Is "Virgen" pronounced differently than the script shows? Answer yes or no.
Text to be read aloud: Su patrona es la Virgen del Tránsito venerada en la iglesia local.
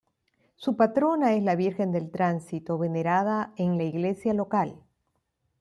no